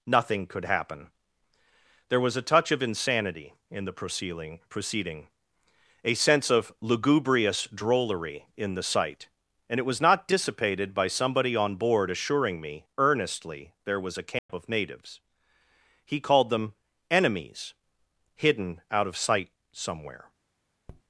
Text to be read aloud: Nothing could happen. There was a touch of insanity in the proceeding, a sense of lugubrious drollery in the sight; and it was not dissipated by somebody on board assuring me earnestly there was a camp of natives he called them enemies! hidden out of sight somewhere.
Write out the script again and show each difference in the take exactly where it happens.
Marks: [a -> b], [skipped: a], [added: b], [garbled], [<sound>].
Nothing could happen. There was a touch of insanity in the proceeding, [added: proceeding] a sense of lugubrious drollery in the sight; and it was not dissipated by somebody on board assuring me earnestly there was a camp [dropout] of natives he called them enemies! hidden out of sight somewhere. [tap]